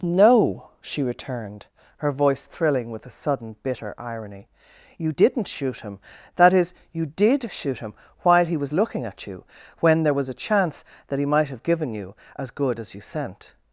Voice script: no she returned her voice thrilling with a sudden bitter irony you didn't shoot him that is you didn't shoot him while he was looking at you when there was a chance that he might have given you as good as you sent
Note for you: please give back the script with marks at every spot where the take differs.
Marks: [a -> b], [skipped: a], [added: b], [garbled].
no she returned her voice thrilling with a sudden bitter irony you didn't shoot him that is you [didn't -> did] shoot him while he was looking at you when there was a chance that he might have given you as good as you sent